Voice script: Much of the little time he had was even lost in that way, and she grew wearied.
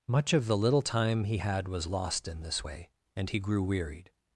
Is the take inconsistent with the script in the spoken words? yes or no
yes